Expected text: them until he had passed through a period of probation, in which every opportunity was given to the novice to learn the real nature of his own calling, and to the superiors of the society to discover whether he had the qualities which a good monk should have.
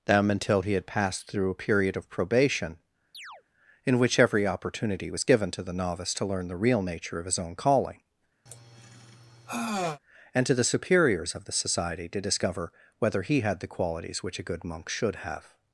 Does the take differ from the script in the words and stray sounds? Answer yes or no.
yes